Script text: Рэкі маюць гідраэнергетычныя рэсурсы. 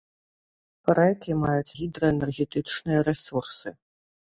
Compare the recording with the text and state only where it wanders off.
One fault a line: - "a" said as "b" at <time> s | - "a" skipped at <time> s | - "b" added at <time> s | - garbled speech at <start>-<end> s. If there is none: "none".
none